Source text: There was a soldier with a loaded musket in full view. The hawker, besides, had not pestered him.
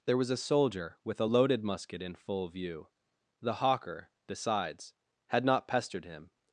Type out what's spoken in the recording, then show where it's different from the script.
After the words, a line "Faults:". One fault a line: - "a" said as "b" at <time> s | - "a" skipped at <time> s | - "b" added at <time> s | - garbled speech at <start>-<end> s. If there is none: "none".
There was a soldier with a loaded musket in full view. The hawker, besides, had not pestered him.
Faults:
none